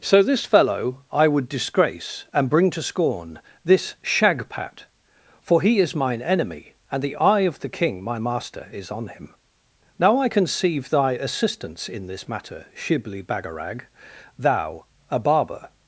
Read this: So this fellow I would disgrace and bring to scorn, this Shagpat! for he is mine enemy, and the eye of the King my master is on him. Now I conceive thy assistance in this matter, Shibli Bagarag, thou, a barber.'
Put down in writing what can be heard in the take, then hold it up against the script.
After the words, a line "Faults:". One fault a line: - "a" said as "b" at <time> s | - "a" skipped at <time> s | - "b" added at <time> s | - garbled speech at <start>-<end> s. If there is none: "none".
So this fellow I would disgrace and bring to scorn, this Shagpat! for he is mine enemy, and the eye of the King my master is on him. Now I conceive thy assistance in this matter, Shibli Bagarag, thou, a barber.'
Faults:
none